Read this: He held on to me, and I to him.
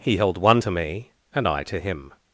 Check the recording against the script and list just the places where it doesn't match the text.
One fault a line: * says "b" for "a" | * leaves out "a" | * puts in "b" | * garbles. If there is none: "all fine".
* says "one" for "on"